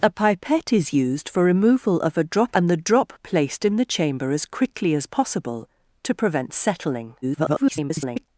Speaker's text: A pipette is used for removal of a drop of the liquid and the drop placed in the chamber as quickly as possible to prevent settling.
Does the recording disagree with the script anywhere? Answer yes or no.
yes